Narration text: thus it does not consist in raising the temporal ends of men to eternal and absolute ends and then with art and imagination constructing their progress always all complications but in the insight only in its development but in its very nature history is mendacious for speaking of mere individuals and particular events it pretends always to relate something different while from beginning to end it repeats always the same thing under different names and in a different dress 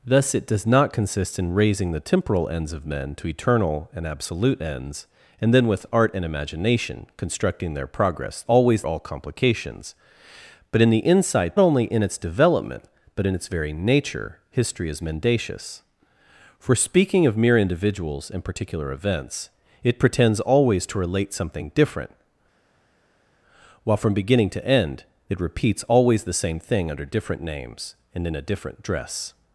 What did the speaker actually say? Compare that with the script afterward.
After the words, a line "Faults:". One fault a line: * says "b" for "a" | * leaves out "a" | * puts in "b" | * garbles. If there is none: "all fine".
thus it does not consist in raising the temporal ends of men to eternal and absolute ends and then with art and imagination constructing their progress always all complications but in the insight only in its development but in its very nature history is mendacious for speaking of mere individuals and particular events it pretends always to relate something different while from beginning to end it repeats always the same thing under different names and in a different dress
Faults:
all fine